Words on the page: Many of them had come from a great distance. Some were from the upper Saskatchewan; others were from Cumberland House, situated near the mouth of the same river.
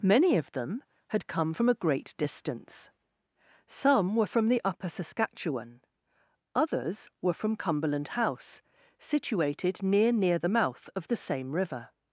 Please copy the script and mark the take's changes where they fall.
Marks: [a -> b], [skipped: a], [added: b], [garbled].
Many of them had come from a great distance. Some were from the upper Saskatchewan; others were from Cumberland House, situated near [added: near] the mouth of the same river.